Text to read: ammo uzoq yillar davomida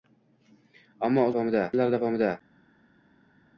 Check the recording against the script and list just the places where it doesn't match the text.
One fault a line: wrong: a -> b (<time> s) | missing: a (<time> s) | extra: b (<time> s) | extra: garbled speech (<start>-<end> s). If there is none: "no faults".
wrong: uzoq -> davomida (1.3 s)